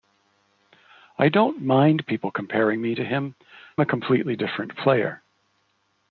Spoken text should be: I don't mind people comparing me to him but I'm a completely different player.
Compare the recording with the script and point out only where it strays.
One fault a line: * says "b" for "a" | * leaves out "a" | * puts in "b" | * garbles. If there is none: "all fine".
* leaves out "but I'm"